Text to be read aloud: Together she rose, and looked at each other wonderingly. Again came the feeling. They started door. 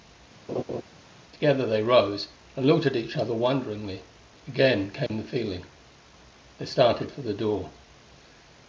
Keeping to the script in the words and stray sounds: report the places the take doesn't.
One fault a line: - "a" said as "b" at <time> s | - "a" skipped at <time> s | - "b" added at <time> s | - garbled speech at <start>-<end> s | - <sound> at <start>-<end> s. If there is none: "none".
- laugh at 0.5-0.8 s
- "she" said as "they" at 1.6 s
- dropout at 5.1-5.1 s
- "for the" added at 7.1 s